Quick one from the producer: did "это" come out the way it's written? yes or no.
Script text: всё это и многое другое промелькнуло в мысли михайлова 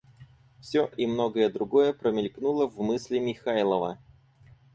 no